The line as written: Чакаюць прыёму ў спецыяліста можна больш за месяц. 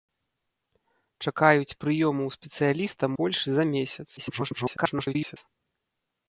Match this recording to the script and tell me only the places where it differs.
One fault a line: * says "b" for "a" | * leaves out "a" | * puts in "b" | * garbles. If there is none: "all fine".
* leaves out "можна"
* garbles